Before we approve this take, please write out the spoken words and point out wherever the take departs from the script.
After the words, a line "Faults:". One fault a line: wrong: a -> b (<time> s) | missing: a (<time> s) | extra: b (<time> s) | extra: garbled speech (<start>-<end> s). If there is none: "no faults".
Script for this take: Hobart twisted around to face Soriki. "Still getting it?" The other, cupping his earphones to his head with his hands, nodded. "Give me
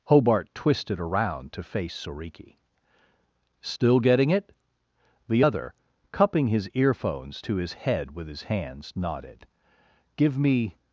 Hobart twisted around to face Soriki. "Still getting it?" The other, cupping his earphones to his head with his hands, nodded. "Give me
Faults:
no faults